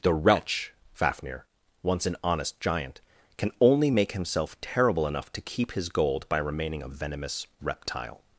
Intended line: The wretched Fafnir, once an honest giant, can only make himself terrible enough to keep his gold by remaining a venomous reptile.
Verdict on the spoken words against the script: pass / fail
fail